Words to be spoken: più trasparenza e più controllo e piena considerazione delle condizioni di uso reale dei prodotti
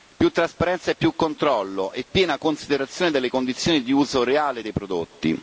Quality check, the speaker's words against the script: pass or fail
pass